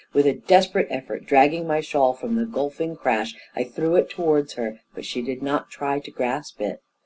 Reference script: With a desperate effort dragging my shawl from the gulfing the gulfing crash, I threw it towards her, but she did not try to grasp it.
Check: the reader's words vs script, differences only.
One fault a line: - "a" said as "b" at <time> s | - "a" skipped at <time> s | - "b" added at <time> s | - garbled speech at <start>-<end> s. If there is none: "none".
- "the gulfing" skipped at 3.0 s